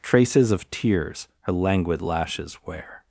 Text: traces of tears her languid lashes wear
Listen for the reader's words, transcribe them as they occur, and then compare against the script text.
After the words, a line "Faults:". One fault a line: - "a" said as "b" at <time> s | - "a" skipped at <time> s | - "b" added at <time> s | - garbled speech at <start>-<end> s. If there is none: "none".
traces of tears her languid lashes wear
Faults:
none